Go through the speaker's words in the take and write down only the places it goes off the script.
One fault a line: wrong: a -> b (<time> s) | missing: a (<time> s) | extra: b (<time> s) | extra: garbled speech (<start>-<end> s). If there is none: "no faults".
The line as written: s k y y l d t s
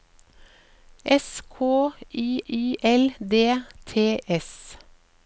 no faults